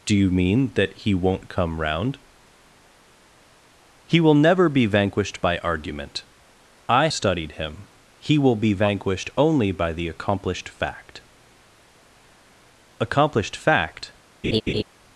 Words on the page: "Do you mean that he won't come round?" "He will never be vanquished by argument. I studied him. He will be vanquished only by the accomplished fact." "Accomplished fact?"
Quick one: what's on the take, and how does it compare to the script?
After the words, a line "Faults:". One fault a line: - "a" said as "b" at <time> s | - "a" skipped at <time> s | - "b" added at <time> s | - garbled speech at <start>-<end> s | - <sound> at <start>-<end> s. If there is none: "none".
"Do you mean that he won't come round?" "He will never be vanquished by argument. I studied him. He will be vanquished only by the accomplished fact." "Accomplished fact?"
Faults:
- laugh at 14.4-14.8 s